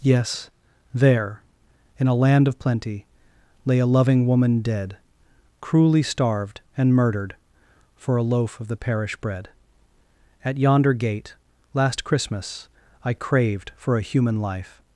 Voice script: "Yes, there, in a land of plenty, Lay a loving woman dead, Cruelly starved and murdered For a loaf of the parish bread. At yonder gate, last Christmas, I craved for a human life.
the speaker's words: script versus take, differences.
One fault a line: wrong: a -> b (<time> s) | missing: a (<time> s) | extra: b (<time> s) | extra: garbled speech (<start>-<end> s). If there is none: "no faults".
no faults